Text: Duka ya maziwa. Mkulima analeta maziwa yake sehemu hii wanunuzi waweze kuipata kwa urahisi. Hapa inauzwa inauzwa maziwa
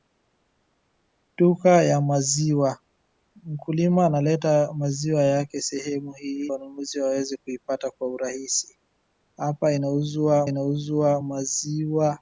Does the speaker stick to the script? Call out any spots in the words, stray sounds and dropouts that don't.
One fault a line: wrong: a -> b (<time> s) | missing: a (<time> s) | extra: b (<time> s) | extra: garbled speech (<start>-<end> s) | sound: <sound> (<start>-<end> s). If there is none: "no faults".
no faults